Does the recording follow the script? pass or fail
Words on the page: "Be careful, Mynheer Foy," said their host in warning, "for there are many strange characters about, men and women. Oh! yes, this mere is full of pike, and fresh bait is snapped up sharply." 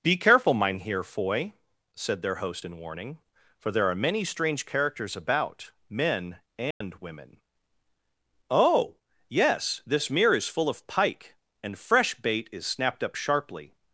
pass